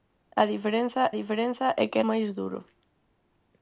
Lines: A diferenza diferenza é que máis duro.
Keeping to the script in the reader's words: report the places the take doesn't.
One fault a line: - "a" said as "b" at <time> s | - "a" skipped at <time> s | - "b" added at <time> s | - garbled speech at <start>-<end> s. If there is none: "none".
none